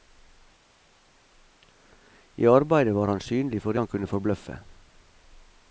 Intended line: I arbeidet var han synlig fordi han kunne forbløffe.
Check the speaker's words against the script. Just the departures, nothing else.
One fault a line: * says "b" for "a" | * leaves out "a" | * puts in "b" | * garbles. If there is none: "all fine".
all fine